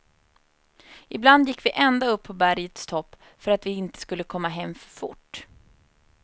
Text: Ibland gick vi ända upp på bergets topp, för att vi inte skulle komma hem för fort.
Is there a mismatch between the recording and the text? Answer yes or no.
no